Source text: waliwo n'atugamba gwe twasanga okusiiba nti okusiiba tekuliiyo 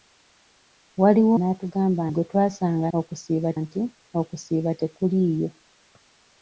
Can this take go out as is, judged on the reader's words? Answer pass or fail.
pass